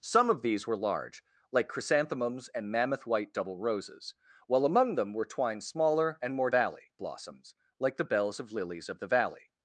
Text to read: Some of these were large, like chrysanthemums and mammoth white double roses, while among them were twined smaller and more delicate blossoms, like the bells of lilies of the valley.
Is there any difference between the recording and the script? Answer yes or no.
yes